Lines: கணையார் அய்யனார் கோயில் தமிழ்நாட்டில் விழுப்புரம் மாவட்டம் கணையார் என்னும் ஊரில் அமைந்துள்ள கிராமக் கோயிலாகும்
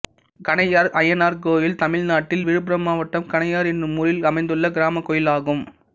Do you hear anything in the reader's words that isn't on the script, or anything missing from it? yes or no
no